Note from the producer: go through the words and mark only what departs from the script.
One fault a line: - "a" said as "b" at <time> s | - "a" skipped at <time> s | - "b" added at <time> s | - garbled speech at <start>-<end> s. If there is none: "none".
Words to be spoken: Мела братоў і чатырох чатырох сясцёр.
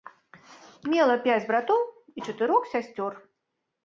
- "пяць" added at 1.3 s
- "чатырох" skipped at 2.7 s